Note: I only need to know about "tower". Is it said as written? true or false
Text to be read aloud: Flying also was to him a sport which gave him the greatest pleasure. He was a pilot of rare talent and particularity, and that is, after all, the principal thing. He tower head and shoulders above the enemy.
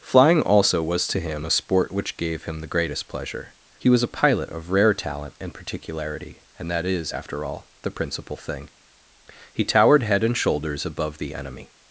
false